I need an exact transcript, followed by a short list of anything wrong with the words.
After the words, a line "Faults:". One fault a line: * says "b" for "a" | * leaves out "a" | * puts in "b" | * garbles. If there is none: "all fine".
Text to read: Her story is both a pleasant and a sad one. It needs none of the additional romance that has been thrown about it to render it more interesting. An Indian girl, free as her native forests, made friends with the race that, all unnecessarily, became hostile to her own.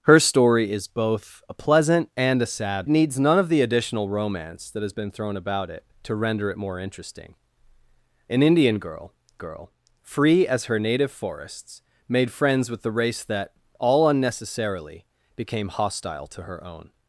Her story is both a pleasant and a sad needs none of the additional romance that has been thrown about it to render it more interesting. An Indian girl girl, free as her native forests, made friends with the race that, all unnecessarily, became hostile to her own.
Faults:
* leaves out "one It"
* puts in "girl"